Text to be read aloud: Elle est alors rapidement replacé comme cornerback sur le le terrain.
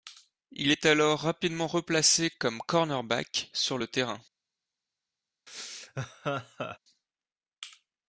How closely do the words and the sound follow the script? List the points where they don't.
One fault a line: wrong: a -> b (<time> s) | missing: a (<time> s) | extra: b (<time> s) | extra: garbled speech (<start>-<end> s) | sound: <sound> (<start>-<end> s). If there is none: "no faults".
wrong: Elle -> Il (0.5 s)
missing: le (3.9 s)
sound: laugh (5.5-6.8 s)